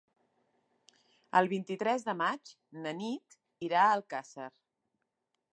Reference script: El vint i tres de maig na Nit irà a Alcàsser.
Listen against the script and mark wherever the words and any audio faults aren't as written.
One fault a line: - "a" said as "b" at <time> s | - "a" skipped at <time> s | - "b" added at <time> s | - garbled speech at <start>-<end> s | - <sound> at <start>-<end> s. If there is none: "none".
none